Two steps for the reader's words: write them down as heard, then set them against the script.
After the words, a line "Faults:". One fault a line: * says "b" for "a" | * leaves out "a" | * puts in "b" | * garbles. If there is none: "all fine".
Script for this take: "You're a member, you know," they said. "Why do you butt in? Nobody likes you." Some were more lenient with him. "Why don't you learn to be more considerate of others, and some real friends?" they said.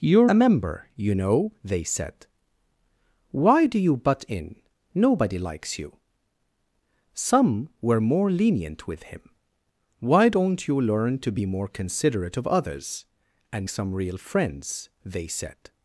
"You're a member, you know," they said. "Why do you butt in? Nobody likes you." Some were more lenient with him. "Why don't you learn to be more considerate of others, and some real friends?" they said.
Faults:
all fine